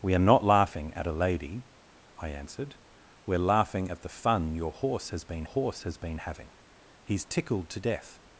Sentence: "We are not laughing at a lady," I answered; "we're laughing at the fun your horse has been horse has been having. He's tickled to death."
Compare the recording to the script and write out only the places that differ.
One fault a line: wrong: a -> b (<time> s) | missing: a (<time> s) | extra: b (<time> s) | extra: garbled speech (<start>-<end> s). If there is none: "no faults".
no faults